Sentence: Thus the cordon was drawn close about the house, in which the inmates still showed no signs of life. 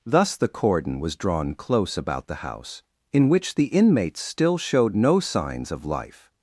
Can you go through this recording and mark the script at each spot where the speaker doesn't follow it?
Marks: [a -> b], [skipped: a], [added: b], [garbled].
Thus the cordon was drawn close about the house, in which the inmates still showed no signs of life.